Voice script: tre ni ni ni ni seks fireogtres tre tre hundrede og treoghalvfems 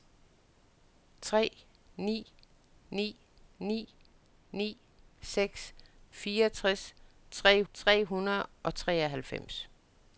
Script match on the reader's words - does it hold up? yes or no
yes